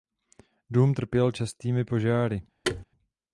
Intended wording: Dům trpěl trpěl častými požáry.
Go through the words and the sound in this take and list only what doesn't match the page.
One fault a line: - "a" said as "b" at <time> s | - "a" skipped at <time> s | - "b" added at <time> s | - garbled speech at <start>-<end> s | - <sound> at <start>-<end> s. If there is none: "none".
- "trpěl" skipped at 1.3 s
- thud at 2.6-2.8 s